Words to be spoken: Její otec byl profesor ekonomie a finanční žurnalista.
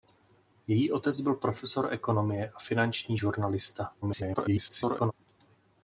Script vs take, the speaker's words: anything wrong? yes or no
yes